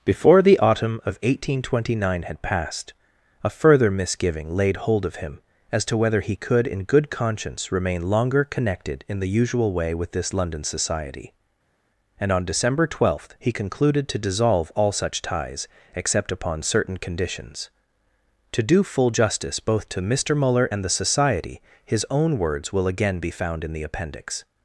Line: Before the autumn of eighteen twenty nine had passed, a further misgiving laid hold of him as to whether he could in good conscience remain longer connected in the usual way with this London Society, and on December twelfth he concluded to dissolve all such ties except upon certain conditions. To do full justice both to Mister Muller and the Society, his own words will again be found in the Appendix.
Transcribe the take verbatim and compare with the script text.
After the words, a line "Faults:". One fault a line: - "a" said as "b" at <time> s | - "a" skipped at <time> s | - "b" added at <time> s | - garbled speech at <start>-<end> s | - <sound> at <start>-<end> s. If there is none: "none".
Before the autumn of eighteen twenty nine had passed, a further misgiving laid hold of him as to whether he could in good conscience remain longer connected in the usual way with this London Society, and on December twelfth he concluded to dissolve all such ties except upon certain conditions. To do full justice both to Mister Muller and the Society, his own words will again be found in the Appendix.
Faults:
none